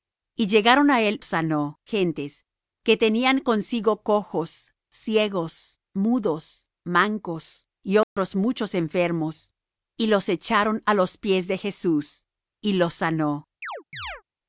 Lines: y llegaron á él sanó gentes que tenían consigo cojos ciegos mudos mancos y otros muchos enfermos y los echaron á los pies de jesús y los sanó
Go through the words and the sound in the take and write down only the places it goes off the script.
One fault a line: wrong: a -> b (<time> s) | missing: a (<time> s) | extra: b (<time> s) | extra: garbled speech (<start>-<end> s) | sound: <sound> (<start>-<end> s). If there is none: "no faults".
sound: dropout (8.0-8.2 s)
sound: chirp (13.6-14.2 s)